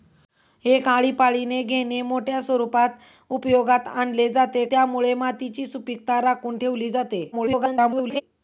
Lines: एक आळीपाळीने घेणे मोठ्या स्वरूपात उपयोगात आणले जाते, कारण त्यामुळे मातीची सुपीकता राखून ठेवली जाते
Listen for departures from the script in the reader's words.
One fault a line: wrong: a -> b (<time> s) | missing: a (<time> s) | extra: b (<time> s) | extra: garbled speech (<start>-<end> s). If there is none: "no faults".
missing: कारण (4.7 s)
extra: garbled speech (7.3-8.2 s)